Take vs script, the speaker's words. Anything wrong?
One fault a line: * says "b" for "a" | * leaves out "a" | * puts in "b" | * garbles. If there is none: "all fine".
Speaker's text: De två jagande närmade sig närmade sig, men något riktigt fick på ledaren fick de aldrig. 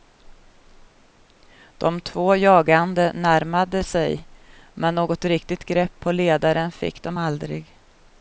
* leaves out "närmade sig"
* says "grepp" for "fick"